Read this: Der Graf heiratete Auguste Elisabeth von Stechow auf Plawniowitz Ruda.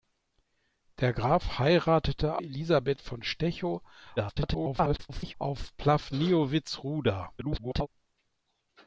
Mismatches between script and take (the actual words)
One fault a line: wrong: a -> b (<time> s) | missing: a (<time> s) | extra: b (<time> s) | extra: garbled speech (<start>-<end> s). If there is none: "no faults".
missing: Auguste (2.4 s)
extra: garbled speech (4.2-5.3 s)
extra: garbled speech (7.4-7.9 s)